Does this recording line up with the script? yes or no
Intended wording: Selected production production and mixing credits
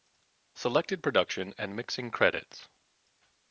no